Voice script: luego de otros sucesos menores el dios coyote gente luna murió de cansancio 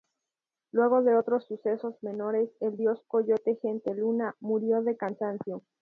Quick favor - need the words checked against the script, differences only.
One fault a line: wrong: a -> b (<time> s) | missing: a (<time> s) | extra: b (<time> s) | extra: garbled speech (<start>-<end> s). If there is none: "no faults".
no faults